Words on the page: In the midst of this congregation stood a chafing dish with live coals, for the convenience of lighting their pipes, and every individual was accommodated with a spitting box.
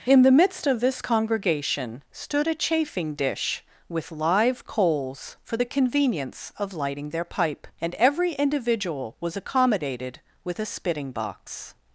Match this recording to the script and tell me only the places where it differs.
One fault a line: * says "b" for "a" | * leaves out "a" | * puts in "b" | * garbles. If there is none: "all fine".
* says "pipe" for "pipes"